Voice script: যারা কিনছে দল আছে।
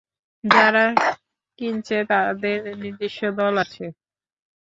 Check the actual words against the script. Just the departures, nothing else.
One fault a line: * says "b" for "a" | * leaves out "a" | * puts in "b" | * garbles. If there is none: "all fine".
* puts in "তাদের নিজস্ব"